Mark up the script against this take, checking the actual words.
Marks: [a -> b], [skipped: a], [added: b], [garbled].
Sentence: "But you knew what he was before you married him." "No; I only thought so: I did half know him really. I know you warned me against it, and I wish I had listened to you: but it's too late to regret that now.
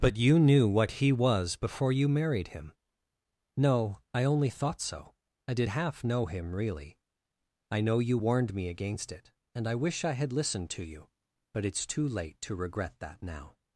"But you knew what he was before you married him." "No; I only thought so: I did half know him really. I know you warned me against it, and I wish I had listened to you: but it's too late to regret that now.